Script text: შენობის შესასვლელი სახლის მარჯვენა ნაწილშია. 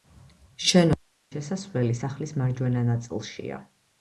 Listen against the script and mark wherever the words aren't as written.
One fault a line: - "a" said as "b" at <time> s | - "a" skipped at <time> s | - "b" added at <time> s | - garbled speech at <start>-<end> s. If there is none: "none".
none